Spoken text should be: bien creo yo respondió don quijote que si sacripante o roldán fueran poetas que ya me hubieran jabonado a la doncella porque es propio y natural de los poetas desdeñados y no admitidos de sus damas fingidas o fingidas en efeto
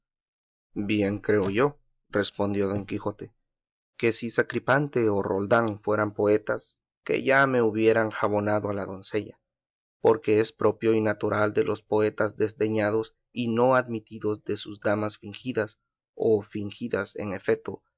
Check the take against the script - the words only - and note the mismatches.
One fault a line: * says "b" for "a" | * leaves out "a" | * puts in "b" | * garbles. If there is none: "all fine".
all fine